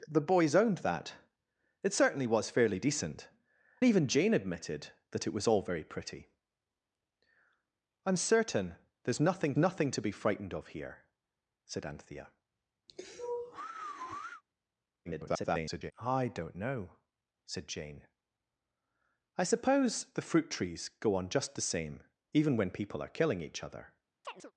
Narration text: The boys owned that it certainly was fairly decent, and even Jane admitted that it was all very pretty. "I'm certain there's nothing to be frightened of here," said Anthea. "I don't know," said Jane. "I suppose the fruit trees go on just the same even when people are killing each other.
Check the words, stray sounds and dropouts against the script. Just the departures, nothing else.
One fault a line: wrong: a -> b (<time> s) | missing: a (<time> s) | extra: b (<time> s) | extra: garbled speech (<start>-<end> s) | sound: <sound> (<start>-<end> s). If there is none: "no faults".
missing: and (3.3 s)
extra: nothing (9.5 s)
sound: sigh (12.9-14.4 s)
extra: garbled speech (15.1-15.9 s)
sound: chirp (24.2-24.5 s)